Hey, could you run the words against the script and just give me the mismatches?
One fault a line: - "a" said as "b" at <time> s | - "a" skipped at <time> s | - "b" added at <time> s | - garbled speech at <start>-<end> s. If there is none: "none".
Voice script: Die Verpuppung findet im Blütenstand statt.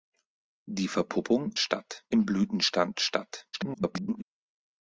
- "findet" said as "statt" at 1.6 s
- garbled speech at 3.5-4.2 s